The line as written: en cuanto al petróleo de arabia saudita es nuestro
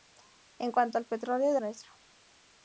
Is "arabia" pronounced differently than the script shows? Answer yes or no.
yes